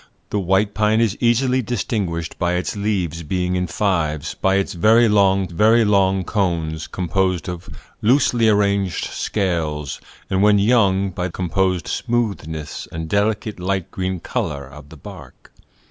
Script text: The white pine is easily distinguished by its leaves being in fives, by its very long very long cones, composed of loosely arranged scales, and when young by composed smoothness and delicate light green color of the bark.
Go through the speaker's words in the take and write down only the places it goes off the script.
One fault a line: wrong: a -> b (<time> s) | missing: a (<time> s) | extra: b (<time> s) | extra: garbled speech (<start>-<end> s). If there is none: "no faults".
no faults